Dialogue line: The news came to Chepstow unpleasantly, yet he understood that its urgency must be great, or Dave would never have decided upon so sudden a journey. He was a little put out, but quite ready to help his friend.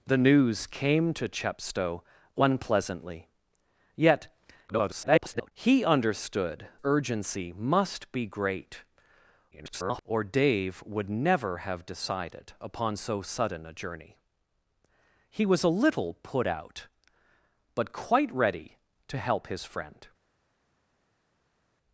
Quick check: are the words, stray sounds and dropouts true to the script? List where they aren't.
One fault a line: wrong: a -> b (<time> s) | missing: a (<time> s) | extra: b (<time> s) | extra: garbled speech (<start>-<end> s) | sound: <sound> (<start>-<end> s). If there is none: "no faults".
extra: garbled speech (4.7-5.5 s)
missing: that its (6.7 s)
extra: garbled speech (9.5-10.0 s)